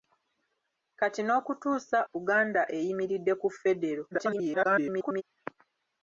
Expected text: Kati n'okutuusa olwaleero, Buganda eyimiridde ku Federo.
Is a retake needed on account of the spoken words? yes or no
yes